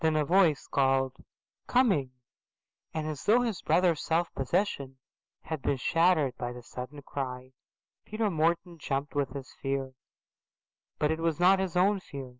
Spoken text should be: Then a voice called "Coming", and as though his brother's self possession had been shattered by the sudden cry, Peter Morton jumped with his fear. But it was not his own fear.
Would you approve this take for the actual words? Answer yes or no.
yes